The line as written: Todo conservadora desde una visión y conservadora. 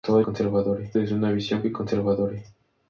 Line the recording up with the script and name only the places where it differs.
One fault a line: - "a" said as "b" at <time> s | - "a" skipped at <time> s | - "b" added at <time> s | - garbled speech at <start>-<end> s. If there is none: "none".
none